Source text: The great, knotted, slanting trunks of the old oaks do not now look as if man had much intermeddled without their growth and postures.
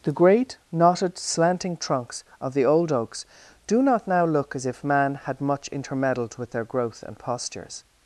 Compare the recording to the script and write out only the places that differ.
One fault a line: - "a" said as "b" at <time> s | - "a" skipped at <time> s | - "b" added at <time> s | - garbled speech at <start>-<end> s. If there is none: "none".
- "without" said as "with" at 6.4 s